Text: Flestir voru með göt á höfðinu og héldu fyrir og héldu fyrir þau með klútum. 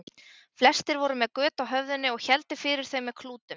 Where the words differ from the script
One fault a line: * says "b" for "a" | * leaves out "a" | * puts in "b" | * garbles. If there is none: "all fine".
* leaves out "og héldu fyrir"